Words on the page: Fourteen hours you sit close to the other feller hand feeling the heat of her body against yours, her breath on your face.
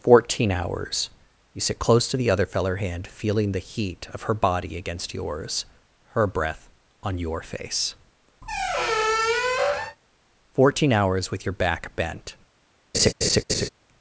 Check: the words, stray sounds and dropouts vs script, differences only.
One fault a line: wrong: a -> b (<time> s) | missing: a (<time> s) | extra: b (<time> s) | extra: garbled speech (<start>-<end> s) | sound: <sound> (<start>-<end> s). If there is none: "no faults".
sound: squeak (8.4-10.0 s)
extra: Fourteen hours with your back bent (10.5 s)
sound: laugh (12.9-13.7 s)